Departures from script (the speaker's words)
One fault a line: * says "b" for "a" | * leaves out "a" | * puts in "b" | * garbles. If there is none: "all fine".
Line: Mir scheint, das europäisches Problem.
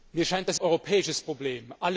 all fine